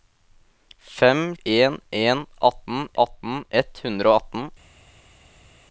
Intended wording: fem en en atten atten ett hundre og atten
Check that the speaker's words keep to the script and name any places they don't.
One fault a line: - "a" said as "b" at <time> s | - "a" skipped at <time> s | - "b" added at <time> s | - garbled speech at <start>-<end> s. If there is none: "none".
none